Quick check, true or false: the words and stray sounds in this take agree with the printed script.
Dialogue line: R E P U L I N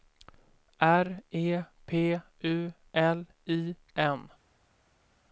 true